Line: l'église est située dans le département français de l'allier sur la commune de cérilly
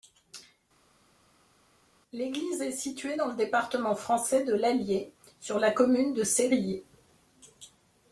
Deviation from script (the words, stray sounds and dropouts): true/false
false